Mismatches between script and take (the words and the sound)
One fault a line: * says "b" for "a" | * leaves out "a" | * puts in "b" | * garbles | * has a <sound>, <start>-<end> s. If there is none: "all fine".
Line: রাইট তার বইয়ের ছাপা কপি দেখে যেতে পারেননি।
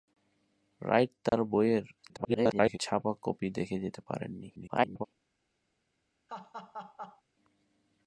* has a dropout, 1.3-1.3 s
* garbles
* garbles
* has a laugh, 6.3-7.2 s